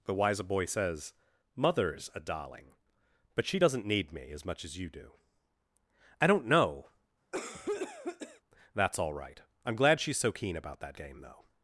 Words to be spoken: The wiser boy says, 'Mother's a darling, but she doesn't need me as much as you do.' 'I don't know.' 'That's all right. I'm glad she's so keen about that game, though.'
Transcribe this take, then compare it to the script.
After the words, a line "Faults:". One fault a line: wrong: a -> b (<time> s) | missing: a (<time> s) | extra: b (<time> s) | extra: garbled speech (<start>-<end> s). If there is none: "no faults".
The wiser boy says, 'Mother's a darling, but she doesn't need me as much as you do.' 'I don't know.' 'That's all right. I'm glad she's so keen about that game, though.'
Faults:
no faults